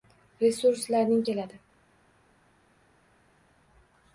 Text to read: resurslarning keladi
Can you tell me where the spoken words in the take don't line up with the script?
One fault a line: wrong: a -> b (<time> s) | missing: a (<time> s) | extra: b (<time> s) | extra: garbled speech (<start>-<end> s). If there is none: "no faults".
no faults